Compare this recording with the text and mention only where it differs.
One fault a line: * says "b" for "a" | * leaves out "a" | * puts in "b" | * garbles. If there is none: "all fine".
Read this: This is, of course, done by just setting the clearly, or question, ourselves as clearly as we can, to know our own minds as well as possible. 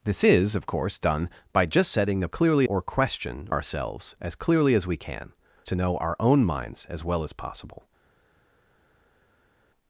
all fine